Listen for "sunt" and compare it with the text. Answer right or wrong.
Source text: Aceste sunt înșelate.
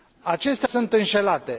right